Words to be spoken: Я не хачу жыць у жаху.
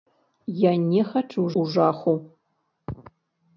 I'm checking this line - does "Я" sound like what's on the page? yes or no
yes